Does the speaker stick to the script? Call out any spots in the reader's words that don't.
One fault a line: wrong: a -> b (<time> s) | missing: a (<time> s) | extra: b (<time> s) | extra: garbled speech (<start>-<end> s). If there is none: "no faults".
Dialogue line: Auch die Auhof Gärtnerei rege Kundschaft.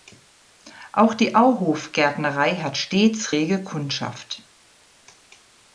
extra: hat stets (2.5 s)